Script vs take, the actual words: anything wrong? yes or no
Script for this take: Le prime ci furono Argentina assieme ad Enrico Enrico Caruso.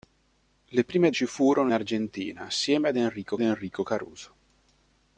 no